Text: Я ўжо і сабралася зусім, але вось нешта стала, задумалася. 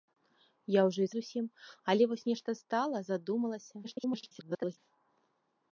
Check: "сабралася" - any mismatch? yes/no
yes